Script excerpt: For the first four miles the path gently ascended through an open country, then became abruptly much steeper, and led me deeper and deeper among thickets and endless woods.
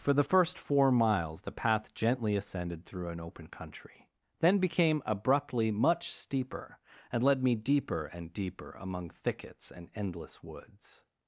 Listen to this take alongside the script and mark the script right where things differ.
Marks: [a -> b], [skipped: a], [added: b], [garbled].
For the first four miles the path gently ascended through an open country, then became abruptly much steeper, and led me deeper and deeper among thickets and endless woods.